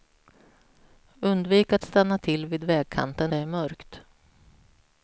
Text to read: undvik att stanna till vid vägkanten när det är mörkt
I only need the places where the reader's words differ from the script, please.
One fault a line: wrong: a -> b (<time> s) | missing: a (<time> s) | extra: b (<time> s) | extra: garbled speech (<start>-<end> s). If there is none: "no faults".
missing: när (3.3 s)